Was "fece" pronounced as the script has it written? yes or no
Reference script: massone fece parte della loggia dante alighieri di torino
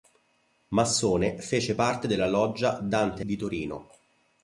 yes